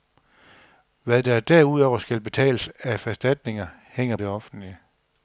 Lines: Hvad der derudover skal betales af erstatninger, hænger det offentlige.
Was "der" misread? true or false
false